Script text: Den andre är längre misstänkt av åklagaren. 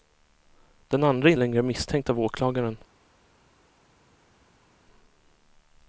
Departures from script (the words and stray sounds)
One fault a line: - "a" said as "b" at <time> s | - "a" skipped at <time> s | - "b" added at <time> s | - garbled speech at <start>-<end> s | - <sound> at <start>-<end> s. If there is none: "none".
none